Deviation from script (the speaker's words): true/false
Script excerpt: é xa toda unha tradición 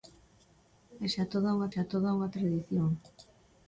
true